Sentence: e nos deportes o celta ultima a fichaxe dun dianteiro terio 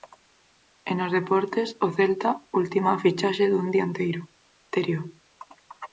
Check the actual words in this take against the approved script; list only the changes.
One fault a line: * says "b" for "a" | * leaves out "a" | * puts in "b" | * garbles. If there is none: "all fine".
all fine